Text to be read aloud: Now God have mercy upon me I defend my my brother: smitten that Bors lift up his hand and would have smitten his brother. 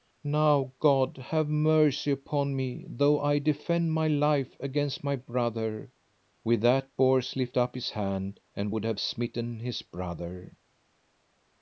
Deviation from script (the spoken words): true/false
true